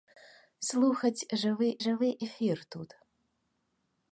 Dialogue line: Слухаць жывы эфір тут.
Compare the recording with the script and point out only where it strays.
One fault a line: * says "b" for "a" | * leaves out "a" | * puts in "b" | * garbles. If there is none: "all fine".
* puts in "жывы"